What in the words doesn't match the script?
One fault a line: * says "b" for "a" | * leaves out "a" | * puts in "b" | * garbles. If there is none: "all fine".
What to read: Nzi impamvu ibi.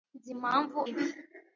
all fine